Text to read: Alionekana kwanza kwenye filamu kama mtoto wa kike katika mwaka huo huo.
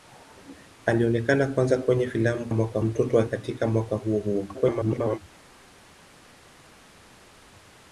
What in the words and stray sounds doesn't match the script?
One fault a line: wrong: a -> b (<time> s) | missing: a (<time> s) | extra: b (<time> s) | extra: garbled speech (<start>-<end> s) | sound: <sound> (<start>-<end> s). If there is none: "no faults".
wrong: kama -> mwaka (2.5 s)
missing: kike (3.2 s)
extra: garbled speech (4.5-5.2 s)